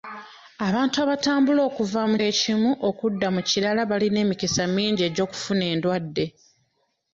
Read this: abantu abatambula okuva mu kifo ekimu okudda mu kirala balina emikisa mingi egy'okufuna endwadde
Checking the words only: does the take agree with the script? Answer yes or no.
no